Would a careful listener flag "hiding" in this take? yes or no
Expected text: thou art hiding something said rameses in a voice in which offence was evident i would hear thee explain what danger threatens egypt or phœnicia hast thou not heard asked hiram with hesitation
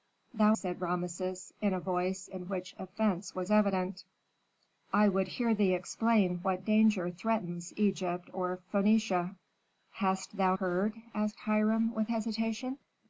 yes